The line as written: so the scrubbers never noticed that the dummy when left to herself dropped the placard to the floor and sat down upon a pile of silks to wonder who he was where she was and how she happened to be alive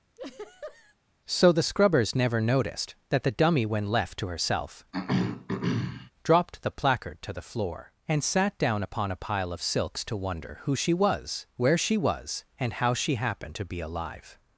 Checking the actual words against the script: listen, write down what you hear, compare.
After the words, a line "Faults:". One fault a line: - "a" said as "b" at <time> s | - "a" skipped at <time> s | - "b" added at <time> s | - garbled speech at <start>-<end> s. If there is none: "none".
so the scrubbers never noticed that the dummy when left to herself dropped the placard to the floor and sat down upon a pile of silks to wonder who she was where she was and how she happened to be alive
Faults:
- "he" said as "she" at 10.8 s